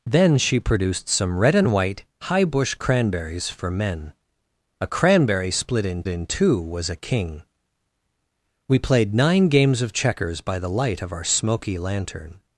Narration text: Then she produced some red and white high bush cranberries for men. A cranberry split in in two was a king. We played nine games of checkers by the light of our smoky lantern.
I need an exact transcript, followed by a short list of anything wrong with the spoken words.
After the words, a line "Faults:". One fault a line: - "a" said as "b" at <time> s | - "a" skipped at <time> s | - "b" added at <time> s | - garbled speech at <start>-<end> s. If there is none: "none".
Then she produced some red and white high bush cranberries for men. A cranberry split in in two was a king. We played nine games of checkers by the light of our smoky lantern.
Faults:
none